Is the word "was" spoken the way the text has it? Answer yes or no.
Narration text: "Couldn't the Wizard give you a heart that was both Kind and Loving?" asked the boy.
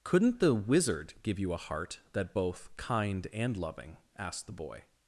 no